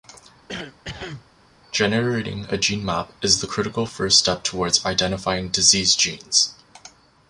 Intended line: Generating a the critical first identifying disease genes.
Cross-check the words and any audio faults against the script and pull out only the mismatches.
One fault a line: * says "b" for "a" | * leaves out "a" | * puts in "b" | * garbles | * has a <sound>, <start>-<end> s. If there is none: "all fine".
* has a cough, 0.5-1.3 s
* puts in "gene map is"
* puts in "step towards"